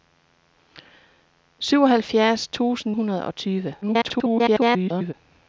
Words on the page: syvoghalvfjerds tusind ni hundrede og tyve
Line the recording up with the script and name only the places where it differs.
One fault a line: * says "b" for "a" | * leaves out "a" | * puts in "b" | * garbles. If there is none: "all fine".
* leaves out "ni"
* garbles